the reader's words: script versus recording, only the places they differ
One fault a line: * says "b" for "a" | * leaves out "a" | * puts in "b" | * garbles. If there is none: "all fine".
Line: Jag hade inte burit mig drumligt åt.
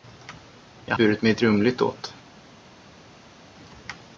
* leaves out "hade inte"